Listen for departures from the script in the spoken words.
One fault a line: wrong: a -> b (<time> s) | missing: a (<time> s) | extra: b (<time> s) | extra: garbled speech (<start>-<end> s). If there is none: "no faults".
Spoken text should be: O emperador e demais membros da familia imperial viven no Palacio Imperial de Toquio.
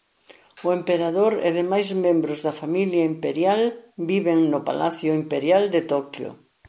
no faults